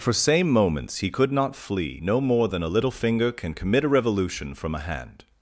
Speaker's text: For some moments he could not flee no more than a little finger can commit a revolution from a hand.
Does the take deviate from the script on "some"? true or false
true